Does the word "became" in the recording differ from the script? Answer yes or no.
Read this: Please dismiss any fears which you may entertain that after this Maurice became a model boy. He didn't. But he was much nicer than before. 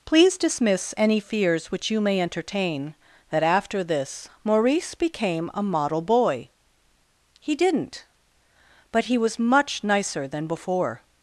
no